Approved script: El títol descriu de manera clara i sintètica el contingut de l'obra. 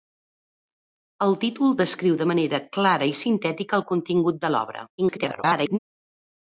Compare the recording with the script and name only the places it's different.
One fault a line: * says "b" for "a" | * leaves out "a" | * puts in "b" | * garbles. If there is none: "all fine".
* garbles